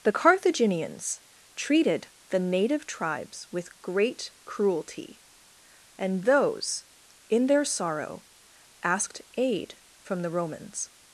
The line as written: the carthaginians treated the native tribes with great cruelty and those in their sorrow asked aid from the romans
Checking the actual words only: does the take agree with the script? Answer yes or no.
yes